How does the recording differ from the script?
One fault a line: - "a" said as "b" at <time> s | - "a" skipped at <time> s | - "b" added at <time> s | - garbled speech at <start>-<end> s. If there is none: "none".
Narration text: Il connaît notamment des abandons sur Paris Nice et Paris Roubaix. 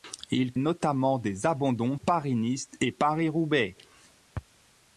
- "connaît" skipped at 0.5 s
- "sur" skipped at 2.0 s